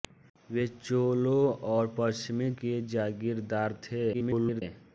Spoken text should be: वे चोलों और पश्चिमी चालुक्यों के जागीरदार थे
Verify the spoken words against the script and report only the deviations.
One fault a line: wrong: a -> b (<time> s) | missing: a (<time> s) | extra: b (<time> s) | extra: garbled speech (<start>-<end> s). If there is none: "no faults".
missing: चालुक्यों (2.5 s)
extra: garbled speech (4.1-4.6 s)